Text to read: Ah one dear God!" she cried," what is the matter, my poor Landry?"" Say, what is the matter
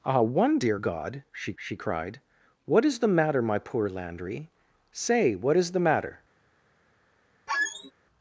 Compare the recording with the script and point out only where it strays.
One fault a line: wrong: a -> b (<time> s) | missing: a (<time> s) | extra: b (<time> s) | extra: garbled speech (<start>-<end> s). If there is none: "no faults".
extra: she (1.6 s)